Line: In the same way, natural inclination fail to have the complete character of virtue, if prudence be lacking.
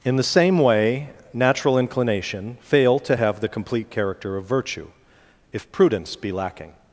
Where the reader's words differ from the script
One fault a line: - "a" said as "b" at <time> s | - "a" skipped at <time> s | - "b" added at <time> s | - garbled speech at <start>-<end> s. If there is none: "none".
none